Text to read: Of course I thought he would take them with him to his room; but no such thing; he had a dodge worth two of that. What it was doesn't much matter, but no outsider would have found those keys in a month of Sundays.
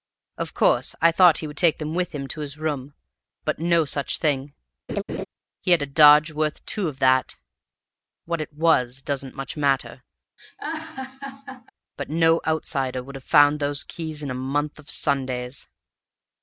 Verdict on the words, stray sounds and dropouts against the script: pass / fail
fail